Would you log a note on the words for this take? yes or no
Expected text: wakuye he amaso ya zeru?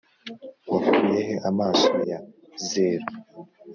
no